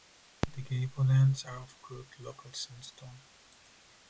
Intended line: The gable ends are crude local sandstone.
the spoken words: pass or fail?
fail